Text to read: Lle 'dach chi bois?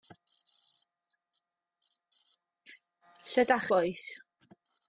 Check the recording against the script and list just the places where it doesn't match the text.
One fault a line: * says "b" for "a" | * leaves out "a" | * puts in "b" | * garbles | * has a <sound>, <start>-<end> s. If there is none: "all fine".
* leaves out "chi"